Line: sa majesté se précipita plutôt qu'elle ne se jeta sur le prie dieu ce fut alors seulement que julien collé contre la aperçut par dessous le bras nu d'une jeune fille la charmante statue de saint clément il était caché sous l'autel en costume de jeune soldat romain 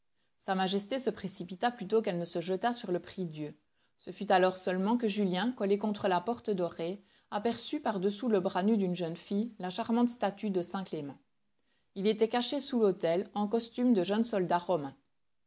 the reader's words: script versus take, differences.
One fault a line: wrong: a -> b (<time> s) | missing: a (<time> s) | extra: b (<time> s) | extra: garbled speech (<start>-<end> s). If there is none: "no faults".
extra: porte dorée (6.2 s)